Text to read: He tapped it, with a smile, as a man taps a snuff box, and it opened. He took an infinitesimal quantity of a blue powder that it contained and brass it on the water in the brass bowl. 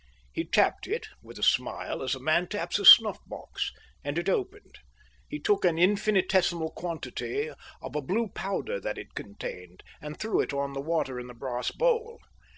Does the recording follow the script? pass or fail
fail